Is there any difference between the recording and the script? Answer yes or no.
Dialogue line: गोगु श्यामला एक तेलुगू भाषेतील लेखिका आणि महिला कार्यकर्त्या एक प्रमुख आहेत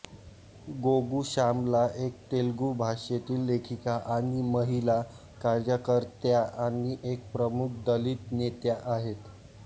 yes